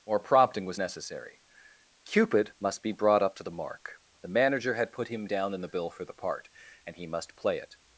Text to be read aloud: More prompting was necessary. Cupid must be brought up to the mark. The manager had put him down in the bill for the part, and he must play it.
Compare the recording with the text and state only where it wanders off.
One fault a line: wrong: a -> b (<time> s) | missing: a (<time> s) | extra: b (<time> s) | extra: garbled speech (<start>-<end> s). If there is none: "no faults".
no faults